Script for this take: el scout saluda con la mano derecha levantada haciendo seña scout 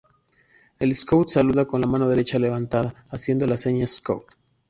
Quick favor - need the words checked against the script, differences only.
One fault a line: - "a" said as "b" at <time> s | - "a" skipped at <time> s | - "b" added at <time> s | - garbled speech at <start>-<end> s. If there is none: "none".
- "la" added at 3.5 s